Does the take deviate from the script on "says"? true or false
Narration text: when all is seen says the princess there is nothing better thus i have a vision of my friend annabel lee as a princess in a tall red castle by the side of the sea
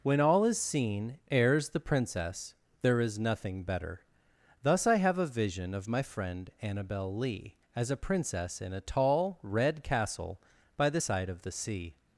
true